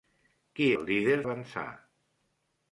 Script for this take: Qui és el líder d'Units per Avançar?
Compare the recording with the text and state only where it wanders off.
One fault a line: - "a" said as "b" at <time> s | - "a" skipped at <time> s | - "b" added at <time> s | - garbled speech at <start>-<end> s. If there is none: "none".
- "és" skipped at 0.7 s
- "d'Units per" skipped at 1.2 s